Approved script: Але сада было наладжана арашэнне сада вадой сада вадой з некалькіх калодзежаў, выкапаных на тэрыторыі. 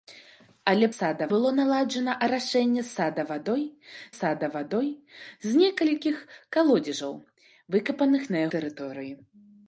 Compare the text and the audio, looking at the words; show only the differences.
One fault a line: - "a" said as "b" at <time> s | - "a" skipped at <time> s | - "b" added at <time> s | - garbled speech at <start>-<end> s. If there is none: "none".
none